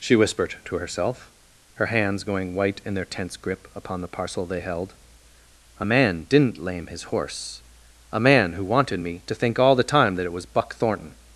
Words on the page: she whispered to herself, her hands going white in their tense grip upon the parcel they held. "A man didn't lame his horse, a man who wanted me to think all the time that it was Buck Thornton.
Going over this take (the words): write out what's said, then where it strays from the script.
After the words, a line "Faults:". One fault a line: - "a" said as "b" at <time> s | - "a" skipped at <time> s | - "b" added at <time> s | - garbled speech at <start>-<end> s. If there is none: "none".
she whispered to herself, her hands going white in their tense grip upon the parcel they held. "A man didn't lame his horse, a man who wanted me to think all the time that it was Buck Thornton.
Faults:
none